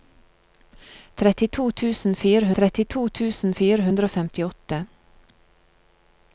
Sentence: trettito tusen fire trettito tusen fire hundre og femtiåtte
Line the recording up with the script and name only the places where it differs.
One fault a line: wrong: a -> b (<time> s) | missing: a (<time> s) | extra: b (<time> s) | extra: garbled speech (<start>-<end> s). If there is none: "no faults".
no faults